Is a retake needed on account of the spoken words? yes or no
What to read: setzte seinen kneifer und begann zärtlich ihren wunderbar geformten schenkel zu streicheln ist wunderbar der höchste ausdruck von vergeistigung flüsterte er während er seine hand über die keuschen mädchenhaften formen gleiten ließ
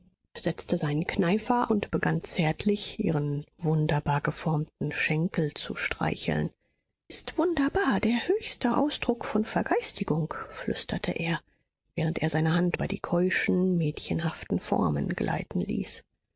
no